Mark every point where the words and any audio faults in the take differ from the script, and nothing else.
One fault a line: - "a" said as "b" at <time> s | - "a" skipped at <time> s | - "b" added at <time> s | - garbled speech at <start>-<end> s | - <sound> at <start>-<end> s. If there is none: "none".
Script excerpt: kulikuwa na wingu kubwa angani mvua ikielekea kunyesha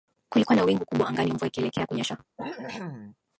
- cough at 2.4-3.2 s